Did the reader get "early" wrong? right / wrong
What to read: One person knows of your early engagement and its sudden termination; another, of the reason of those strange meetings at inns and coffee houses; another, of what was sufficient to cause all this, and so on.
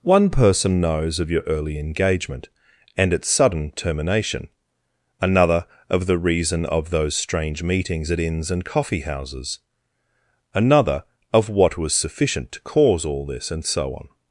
right